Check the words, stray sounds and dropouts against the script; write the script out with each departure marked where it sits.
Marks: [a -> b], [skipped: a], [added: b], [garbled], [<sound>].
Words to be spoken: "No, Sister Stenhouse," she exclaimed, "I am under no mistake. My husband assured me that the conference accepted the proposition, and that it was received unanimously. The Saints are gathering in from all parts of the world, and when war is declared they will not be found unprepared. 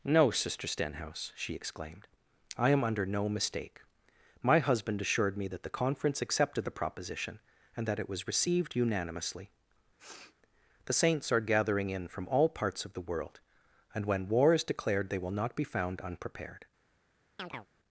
"No, Sister Stenhouse," she exclaimed, "I am under no mistake. My husband assured me that the conference accepted the proposition, and that it was received unanimously. [sniff] The Saints are gathering in from all parts of the world, and when war is declared they will not be found unprepared. [chirp]